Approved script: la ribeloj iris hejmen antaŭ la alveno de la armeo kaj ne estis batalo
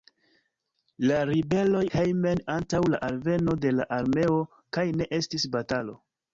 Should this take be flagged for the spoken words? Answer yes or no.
yes